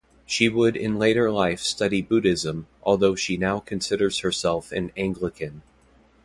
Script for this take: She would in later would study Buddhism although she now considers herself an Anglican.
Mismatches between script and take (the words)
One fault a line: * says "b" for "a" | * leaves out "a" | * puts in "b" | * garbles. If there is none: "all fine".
* says "life" for "would"